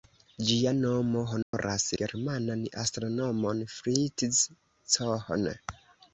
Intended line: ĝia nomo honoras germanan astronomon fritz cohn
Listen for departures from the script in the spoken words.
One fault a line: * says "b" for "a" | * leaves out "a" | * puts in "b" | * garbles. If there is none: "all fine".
all fine